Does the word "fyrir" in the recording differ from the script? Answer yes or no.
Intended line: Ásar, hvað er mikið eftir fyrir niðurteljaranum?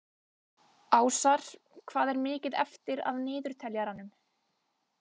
yes